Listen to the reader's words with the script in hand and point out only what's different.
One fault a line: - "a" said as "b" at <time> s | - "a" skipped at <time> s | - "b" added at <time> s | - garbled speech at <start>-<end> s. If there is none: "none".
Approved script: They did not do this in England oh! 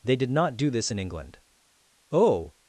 none